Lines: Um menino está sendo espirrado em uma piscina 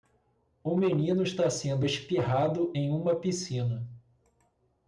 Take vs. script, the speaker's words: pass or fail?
pass